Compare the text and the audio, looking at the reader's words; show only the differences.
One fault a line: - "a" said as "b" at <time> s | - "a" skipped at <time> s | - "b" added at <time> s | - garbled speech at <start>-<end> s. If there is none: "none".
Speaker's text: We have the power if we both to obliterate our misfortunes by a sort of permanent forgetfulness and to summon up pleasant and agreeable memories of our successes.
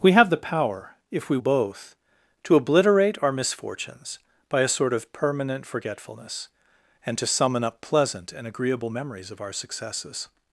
none